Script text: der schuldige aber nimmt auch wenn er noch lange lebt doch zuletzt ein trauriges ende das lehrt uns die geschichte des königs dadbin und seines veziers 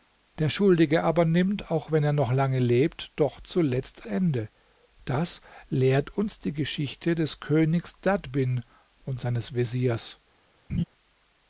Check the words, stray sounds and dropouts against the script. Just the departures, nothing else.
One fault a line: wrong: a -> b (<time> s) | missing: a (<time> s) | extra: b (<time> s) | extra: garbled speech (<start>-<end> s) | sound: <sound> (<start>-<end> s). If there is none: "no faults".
missing: ein trauriges (4.1 s)
sound: laugh (10.7-10.8 s)